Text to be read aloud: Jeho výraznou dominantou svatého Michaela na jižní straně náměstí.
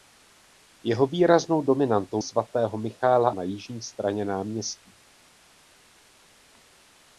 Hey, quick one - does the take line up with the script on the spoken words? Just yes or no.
yes